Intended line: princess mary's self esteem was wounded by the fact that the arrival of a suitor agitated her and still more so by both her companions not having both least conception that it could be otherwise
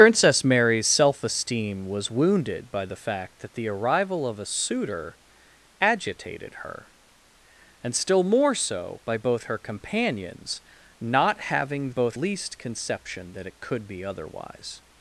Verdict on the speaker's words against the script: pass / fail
pass